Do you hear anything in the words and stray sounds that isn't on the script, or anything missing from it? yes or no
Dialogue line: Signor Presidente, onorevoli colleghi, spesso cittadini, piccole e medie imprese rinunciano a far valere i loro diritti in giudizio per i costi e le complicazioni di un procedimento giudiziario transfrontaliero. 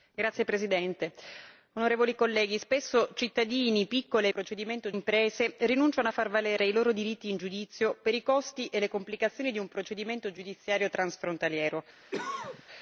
yes